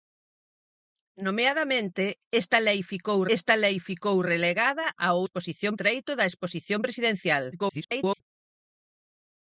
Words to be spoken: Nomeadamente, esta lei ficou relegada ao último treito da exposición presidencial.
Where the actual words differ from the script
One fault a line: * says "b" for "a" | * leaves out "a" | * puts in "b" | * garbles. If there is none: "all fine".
* puts in "esta lei ficou"
* says "exposición" for "último"
* garbles